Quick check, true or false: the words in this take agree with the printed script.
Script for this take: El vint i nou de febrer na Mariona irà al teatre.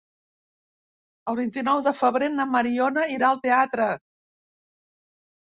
true